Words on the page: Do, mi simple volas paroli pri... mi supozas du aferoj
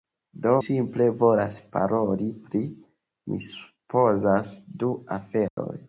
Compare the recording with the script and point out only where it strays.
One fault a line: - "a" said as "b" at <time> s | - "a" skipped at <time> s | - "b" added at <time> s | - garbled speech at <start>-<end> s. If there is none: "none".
- "mi" skipped at 0.5 s